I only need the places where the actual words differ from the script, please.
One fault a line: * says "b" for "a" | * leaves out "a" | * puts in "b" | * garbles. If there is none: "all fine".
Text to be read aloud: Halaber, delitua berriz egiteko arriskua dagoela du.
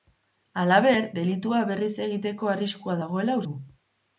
all fine